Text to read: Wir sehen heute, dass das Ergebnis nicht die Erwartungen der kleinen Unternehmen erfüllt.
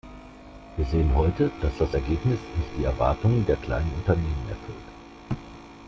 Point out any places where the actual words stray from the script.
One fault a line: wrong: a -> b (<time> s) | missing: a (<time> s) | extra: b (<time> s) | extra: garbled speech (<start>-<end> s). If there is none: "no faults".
no faults